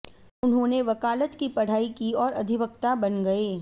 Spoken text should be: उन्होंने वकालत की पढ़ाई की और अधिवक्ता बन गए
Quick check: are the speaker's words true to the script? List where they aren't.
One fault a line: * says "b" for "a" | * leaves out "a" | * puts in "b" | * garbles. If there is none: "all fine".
all fine